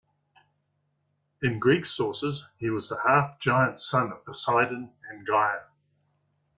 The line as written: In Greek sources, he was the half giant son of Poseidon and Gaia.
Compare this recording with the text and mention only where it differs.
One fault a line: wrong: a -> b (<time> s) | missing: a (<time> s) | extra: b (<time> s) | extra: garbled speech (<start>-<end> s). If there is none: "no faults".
no faults